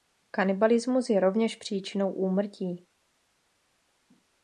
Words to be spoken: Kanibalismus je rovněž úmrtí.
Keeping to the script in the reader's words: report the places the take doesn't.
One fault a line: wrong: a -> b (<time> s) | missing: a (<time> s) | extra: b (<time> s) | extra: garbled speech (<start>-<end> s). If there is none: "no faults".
extra: příčinou (1.6 s)